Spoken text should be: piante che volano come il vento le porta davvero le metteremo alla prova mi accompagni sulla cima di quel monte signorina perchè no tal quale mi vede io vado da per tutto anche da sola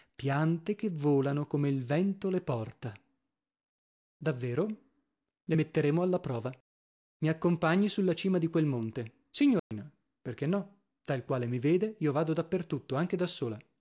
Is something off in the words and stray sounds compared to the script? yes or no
yes